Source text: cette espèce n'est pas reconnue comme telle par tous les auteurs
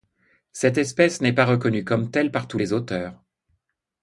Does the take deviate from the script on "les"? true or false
false